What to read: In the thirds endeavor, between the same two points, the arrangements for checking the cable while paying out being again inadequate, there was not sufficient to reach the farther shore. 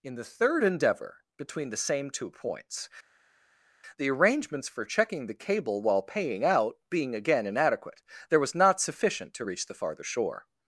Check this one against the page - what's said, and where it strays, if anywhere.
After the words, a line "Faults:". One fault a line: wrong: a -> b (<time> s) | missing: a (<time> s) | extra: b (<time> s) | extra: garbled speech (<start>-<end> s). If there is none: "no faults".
In the third endeavor, between the same two points, the arrangements for checking the cable while paying out being again inadequate, there was not sufficient to reach the farther shore.
Faults:
wrong: thirds -> third (0.2 s)